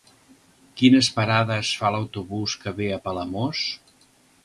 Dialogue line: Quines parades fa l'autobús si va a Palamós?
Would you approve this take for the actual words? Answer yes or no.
no